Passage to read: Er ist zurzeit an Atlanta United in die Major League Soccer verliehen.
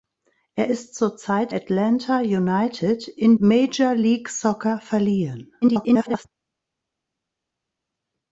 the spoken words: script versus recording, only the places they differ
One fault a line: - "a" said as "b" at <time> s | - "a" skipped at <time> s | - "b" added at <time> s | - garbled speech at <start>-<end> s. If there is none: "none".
- "an" skipped at 1.5 s
- "die" skipped at 3.4 s
- garbled speech at 5.6-6.3 s